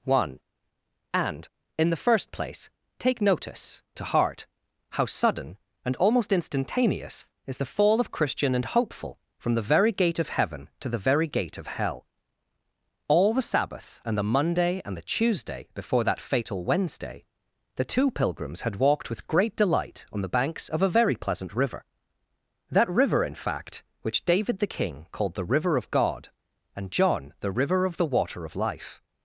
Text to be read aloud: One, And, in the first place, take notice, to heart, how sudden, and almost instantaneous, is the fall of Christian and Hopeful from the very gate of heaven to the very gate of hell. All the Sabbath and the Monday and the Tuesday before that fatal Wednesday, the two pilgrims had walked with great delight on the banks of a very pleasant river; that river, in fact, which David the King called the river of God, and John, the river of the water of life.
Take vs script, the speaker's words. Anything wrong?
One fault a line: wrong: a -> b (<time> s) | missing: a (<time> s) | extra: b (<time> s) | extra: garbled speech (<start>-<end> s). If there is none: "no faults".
no faults